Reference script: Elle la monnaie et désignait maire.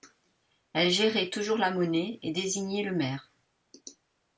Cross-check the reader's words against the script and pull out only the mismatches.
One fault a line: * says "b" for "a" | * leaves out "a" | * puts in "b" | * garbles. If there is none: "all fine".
* puts in "gérait toujours"
* puts in "le"